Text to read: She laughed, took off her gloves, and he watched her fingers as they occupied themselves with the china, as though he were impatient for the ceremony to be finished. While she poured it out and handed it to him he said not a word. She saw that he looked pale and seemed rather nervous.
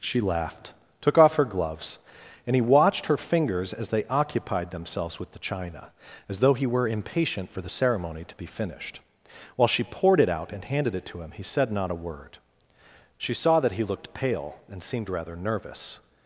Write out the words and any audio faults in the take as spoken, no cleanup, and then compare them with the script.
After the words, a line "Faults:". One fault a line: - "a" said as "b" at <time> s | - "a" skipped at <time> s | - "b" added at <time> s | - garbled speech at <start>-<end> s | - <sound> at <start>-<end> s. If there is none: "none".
She laughed, took off her gloves, and he watched her fingers as they occupied themselves with the china, as though he were impatient for the ceremony to be finished. While she poured it out and handed it to him he said not a word. She saw that he looked pale and seemed rather nervous.
Faults:
none